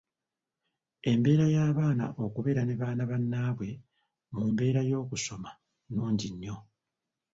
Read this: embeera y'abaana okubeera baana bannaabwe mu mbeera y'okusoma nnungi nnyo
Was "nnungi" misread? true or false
false